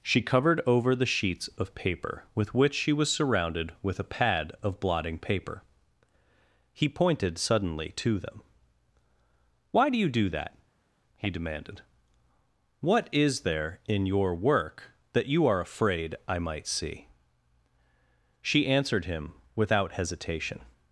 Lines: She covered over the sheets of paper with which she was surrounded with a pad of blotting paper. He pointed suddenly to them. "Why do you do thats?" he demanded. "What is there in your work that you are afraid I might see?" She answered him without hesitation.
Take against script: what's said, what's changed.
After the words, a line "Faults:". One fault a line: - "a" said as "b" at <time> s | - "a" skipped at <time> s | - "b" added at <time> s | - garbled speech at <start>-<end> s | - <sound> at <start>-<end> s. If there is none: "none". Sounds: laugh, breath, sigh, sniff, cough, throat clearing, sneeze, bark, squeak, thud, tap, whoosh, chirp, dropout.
She covered over the sheets of paper with which she was surrounded with a pad of blotting paper. He pointed suddenly to them. "Why do you do that?" he demanded. "What is there in your work that you are afraid I might see?" She answered him without hesitation.
Faults:
- "thats" said as "that" at 10.3 s